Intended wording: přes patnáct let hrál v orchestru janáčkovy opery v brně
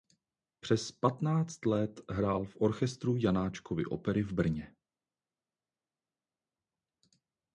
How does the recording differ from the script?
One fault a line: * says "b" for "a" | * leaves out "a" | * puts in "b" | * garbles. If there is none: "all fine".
all fine